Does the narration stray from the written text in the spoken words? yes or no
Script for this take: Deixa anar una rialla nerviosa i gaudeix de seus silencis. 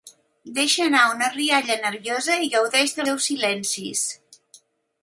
no